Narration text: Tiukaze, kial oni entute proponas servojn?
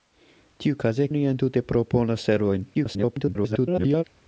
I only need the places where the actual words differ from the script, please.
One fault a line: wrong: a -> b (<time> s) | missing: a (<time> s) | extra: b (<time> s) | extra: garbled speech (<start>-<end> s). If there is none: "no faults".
missing: kial (1.1 s)
extra: garbled speech (2.7-4.0 s)